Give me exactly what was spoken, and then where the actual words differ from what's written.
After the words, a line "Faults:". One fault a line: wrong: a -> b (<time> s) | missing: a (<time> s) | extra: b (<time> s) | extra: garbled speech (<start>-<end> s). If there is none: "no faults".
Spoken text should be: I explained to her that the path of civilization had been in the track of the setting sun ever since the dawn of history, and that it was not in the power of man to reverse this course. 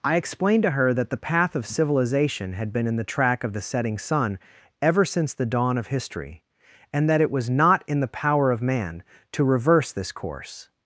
I explained to her that the path of civilization had been in the track of the setting sun ever since the dawn of history, and that it was not in the power of man to reverse this course.
Faults:
no faults